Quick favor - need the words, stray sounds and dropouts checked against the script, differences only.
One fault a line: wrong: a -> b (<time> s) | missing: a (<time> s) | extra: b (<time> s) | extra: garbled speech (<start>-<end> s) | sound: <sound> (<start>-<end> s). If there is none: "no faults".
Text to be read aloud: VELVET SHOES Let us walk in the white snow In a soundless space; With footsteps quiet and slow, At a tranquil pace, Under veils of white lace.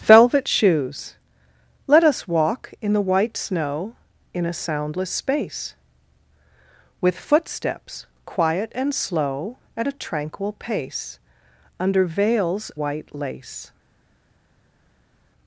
missing: of (12.7 s)